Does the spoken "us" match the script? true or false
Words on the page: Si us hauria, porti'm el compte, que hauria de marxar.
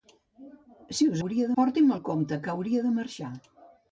true